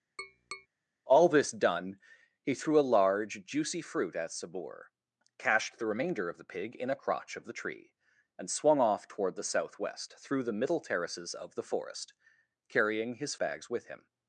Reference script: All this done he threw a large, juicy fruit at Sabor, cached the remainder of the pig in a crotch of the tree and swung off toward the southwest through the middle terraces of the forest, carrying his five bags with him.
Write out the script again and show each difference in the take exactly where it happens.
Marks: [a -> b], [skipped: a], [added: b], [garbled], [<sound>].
[tap] All this done he threw a large, juicy fruit at Sabor, cached the remainder of the pig in a crotch of the tree and swung off toward the southwest through the middle terraces of the forest, carrying his [skipped: five] bags with him.